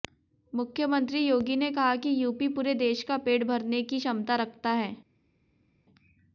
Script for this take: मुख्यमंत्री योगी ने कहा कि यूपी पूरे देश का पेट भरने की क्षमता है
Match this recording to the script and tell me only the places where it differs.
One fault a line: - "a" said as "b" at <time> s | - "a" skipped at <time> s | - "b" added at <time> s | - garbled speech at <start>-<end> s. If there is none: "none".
- "रखता" added at 4.4 s